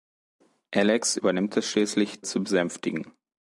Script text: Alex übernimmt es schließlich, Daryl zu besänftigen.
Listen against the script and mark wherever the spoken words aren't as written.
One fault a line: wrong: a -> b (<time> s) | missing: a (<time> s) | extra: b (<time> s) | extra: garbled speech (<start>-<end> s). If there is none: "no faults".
missing: Daryl (2.2 s)